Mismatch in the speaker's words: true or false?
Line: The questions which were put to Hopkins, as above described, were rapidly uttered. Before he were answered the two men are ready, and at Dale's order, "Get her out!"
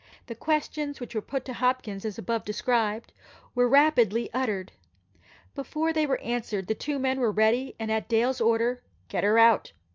true